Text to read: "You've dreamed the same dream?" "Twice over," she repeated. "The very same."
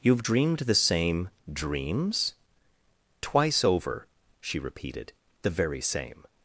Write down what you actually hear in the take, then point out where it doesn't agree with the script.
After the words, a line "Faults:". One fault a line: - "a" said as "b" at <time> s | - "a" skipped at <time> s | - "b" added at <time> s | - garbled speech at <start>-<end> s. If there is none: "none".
"You've dreamed the same dreams?" "Twice over," she repeated. "The very same."
Faults:
- "dream" said as "dreams" at 1.5 s